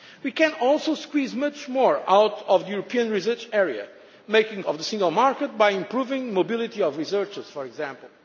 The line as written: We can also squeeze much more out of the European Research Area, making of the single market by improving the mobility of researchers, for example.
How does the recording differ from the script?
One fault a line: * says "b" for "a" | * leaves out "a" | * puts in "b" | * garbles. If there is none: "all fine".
all fine